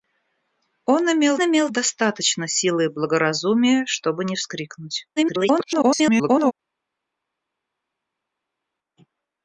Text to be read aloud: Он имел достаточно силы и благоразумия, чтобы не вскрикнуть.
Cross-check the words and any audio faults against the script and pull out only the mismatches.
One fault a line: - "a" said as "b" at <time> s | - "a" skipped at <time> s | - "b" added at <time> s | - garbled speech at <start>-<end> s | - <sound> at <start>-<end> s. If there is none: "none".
- "имел" added at 1.4 s
- garbled speech at 5.2-6.5 s